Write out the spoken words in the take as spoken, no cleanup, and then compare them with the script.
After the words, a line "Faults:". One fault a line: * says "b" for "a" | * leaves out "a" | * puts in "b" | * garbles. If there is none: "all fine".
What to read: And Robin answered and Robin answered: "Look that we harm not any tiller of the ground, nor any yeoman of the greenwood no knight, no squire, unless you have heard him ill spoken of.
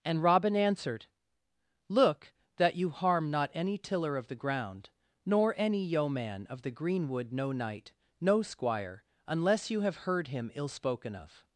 And Robin answered: "Look that you harm not any tiller of the ground, nor any yeoman of the greenwood no knight, no squire, unless you have heard him ill spoken of.
Faults:
* leaves out "and Robin answered"
* says "you" for "we"